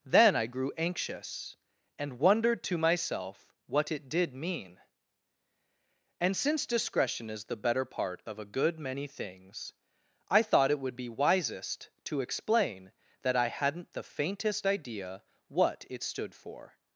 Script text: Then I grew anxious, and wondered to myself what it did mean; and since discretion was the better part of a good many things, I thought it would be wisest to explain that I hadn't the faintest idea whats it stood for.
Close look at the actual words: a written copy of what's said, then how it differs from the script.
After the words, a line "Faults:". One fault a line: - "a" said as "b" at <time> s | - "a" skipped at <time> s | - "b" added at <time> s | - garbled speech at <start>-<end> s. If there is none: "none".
Then I grew anxious, and wondered to myself what it did mean; and since discretion is the better part of a good many things, I thought it would be wisest to explain that I hadn't the faintest idea what it stood for.
Faults:
- "was" said as "is" at 7.3 s
- "whats" said as "what" at 15.5 s